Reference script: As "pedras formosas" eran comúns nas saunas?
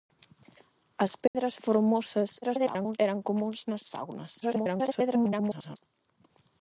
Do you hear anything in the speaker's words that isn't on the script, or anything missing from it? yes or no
yes